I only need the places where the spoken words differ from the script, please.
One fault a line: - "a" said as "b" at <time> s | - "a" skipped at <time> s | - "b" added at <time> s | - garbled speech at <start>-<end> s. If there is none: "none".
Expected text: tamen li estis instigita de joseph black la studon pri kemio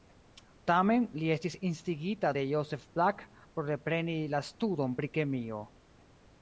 - "por repreni" added at 3.5 s